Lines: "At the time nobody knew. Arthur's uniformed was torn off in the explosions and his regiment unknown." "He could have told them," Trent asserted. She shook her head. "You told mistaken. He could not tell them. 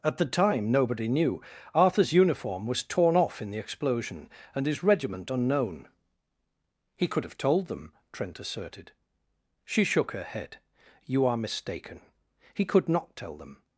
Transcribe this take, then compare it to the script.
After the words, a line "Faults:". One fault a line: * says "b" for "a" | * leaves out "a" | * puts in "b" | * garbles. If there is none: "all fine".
"At the time nobody knew. Arthur's uniform was torn off in the explosion and his regiment unknown." "He could have told them," Trent asserted. She shook her head. "You are mistaken. He could not tell them.
Faults:
* says "uniform" for "uniformed"
* says "explosion" for "explosions"
* says "are" for "told"